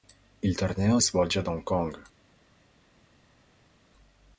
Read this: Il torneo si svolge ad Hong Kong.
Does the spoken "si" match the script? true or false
false